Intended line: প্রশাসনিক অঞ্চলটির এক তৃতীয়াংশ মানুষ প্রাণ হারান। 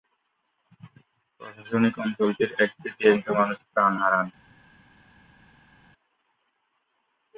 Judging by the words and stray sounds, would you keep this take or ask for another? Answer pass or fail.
pass